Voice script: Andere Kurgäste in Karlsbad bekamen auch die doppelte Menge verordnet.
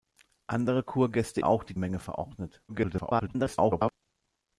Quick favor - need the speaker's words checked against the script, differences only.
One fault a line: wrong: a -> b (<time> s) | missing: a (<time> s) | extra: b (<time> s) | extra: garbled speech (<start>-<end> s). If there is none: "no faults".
missing: in Karlsbad bekamen (1.4 s)
missing: doppelte (1.8 s)
extra: garbled speech (2.7-3.9 s)